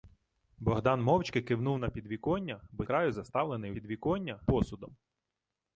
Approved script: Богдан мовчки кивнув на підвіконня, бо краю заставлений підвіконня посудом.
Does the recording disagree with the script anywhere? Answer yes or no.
no